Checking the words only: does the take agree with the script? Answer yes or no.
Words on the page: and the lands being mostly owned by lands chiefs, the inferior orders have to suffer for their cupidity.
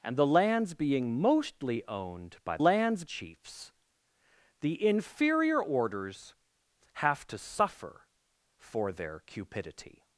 yes